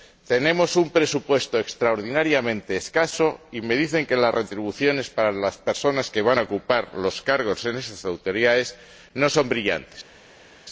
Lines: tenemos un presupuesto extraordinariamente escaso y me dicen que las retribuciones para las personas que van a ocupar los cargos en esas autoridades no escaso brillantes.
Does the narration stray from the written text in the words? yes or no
yes